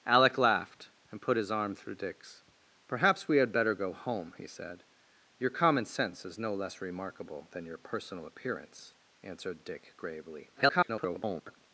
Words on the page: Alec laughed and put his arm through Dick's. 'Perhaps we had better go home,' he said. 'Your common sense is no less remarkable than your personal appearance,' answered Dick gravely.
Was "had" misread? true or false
false